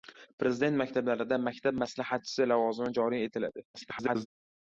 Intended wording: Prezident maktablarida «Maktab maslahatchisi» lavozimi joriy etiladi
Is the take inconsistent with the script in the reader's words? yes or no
yes